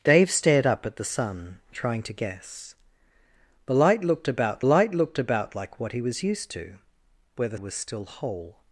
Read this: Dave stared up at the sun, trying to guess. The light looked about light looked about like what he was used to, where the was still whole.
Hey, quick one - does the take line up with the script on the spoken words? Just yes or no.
yes